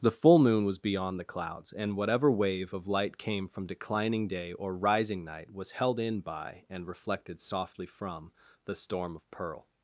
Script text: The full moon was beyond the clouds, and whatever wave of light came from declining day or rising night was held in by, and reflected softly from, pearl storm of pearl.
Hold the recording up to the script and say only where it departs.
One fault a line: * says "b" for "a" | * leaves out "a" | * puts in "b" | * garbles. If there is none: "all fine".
* says "the" for "pearl"